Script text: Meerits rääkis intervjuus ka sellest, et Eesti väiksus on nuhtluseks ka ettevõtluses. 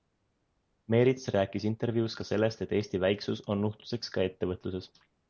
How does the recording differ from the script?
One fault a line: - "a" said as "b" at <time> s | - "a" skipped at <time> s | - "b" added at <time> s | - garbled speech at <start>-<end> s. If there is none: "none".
none